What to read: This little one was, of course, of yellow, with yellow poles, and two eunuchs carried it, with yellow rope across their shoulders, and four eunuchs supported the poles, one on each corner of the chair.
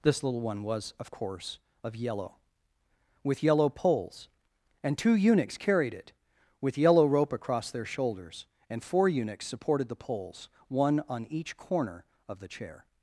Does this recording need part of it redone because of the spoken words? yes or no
no